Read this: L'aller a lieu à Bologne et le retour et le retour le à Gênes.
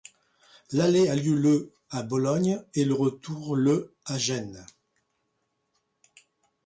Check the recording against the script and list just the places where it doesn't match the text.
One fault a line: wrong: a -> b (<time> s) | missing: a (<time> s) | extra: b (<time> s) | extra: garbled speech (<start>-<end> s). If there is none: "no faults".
extra: le (1.4 s)
missing: et le retour (3.5 s)